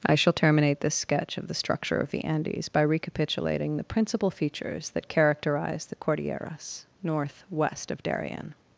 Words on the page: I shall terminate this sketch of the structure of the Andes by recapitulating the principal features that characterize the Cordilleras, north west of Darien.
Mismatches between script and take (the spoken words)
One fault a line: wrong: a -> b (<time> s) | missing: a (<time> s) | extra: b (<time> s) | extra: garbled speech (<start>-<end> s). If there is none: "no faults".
no faults